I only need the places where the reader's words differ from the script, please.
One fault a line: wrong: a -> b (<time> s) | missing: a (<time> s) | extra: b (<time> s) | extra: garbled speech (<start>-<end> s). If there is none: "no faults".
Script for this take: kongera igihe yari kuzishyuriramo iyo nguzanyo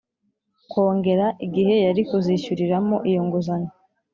no faults